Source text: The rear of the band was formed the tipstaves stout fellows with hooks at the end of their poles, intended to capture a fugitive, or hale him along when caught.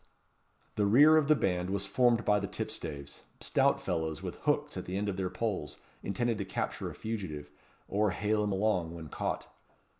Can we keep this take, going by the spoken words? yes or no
no